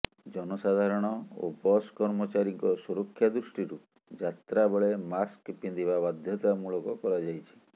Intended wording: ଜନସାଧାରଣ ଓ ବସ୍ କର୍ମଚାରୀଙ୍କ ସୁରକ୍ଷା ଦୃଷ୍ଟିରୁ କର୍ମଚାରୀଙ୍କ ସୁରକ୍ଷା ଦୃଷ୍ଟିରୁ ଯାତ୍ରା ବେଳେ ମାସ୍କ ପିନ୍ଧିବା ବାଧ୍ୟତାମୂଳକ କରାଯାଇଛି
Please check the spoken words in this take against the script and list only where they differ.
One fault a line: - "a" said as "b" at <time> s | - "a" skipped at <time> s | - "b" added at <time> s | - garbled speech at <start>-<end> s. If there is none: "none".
- "କର୍ମଚାରୀଙ୍କ ସୁରକ୍ଷା ଦୃଷ୍ଟିରୁ" skipped at 3.8 s